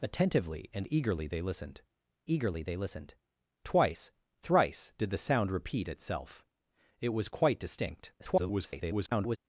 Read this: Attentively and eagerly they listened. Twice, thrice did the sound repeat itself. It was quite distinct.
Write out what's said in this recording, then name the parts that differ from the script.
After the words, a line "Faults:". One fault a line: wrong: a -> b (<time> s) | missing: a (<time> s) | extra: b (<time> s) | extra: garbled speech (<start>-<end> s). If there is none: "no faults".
Attentively and eagerly they listened eagerly they listened. Twice, thrice did the sound repeat itself. It was quite distinct. [garbled]
Faults:
extra: eagerly they listened (2.3 s)
extra: garbled speech (8.2-9.4 s)